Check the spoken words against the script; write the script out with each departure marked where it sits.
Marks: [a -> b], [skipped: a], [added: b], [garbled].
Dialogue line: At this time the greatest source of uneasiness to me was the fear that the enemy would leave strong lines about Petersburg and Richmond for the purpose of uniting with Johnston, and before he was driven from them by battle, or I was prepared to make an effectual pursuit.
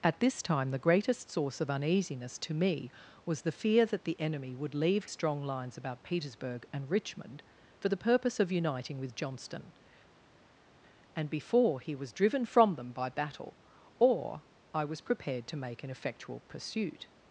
At this time the greatest source of uneasiness to me was the fear that the enemy would leave strong lines about Petersburg and Richmond for the purpose of uniting with Johnston, and before he was driven from them by battle, or I was prepared to make an effectual pursuit.